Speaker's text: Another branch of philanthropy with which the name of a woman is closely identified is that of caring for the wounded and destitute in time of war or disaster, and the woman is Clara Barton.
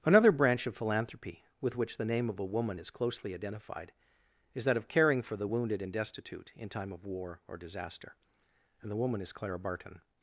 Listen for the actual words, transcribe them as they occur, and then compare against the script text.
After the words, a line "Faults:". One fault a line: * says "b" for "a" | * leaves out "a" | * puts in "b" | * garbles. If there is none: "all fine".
Another branch of philanthropy with which the name of a woman is closely identified is that of caring for the wounded and destitute in time of war or disaster, and the woman is Clara Barton.
Faults:
all fine